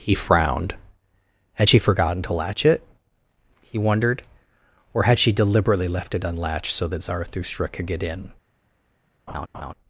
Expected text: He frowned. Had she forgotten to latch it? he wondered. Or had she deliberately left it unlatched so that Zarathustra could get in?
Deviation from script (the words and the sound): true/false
true